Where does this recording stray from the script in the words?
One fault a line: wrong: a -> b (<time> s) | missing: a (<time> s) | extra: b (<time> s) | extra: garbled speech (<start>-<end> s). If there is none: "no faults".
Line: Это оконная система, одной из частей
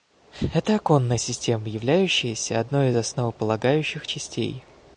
extra: являющаяся (1.7 s)
extra: основополагающих (3.0 s)